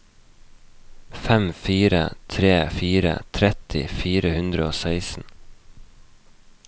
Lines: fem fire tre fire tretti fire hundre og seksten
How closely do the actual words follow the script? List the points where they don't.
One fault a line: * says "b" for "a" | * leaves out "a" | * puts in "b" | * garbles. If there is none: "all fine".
all fine